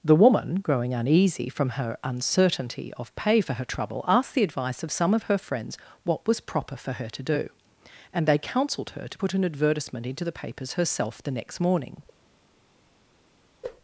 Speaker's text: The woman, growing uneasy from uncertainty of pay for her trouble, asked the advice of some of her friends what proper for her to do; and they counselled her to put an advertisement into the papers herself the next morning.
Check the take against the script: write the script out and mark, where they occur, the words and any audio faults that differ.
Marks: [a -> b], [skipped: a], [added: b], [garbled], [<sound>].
The woman, growing uneasy from [added: her] uncertainty of pay for her trouble, asked the advice of some of her friends what [added: was] proper for her to do; and they counselled her to put an advertisement into the papers herself the next morning.